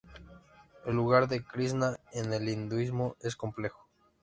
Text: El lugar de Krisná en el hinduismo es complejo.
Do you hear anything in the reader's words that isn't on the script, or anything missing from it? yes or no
no